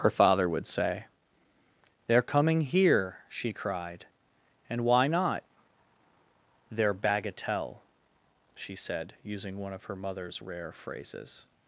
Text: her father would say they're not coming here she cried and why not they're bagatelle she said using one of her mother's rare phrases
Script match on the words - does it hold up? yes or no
no